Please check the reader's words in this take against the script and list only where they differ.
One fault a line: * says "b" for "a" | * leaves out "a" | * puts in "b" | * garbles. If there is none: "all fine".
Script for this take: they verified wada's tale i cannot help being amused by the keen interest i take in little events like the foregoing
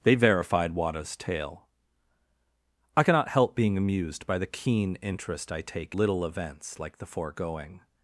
* leaves out "in"